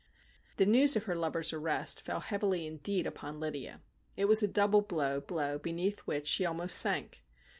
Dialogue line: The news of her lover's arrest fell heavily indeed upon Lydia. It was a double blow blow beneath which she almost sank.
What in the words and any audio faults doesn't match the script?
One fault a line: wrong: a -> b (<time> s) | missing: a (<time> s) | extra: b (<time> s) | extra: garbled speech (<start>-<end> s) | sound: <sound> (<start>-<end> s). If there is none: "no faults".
no faults